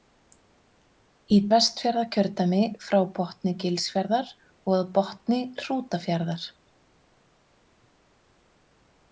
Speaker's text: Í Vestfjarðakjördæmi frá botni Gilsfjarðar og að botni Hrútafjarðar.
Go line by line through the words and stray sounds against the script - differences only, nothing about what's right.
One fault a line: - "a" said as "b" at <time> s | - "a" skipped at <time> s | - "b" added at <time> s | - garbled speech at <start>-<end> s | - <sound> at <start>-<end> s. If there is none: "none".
none